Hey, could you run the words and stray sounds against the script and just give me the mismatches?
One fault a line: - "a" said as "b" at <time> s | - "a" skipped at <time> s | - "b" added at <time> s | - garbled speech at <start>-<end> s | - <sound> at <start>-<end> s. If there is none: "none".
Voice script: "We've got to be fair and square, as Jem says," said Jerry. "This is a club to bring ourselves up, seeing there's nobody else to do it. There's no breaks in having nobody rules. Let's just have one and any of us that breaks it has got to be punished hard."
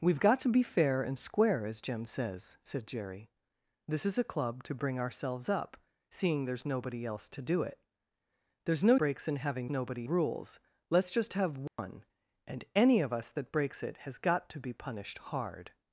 - dropout at 11.7-11.8 s